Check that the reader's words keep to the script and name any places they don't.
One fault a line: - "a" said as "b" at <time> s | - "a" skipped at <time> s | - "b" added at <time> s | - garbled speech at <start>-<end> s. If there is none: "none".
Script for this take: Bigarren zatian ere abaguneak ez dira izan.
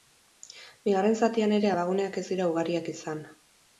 - "ugariak" added at 2.5 s